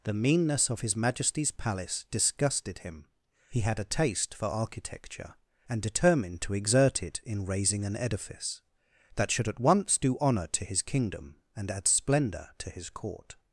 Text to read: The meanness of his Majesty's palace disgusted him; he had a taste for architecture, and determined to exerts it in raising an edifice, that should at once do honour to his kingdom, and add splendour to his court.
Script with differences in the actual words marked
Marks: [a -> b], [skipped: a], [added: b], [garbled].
The meanness of his Majesty's palace disgusted him; he had a taste for architecture, and determined to [exerts -> exert] it in raising an edifice, that should at once do honour to his kingdom, and add splendour to his court.